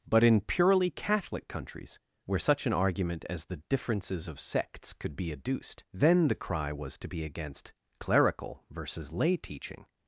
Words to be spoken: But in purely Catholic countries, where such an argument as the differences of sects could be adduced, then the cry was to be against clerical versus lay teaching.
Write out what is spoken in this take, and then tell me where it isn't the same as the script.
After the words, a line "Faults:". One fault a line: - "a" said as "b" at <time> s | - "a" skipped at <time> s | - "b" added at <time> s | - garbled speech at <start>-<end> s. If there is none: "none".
But in purely Catholic countries, where such an argument as the differences of sects could be adduced, then the cry was to be against clerical versus lay teaching.
Faults:
none